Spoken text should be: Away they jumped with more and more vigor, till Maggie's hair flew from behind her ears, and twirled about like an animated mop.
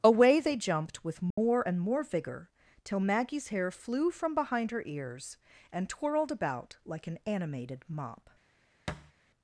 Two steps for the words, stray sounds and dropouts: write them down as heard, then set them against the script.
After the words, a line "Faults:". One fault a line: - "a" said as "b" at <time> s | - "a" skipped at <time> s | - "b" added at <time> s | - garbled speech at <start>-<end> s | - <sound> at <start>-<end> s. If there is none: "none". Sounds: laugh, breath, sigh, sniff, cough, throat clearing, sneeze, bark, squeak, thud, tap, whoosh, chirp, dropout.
Away they jumped with more and more vigor, till Maggie's hair flew from behind her ears, and twirled about like an animated mop.
Faults:
- dropout at 1.3-1.4 s
- thud at 8.9-9.1 s